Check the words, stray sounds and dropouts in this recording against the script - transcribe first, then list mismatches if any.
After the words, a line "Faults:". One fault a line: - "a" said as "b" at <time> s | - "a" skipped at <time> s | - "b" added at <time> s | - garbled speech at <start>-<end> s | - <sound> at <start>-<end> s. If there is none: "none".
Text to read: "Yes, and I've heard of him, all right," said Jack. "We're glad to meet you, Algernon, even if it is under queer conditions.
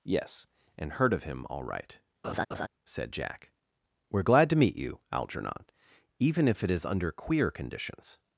"Yes, and heard of him, all right," said Jack. "We're glad to meet you, Algernon, even if it is under queer conditions.
Faults:
- "I've" skipped at 0.9 s
- laugh at 2.2-2.7 s